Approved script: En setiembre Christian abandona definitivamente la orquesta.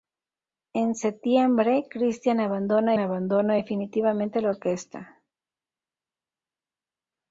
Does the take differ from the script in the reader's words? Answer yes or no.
yes